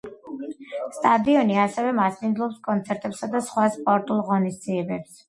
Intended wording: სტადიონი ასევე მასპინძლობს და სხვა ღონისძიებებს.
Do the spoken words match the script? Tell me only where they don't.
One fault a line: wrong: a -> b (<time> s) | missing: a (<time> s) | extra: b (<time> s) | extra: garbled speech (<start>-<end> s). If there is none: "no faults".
extra: კონცერტებსა (2.7 s)
extra: სპორტულ (3.8 s)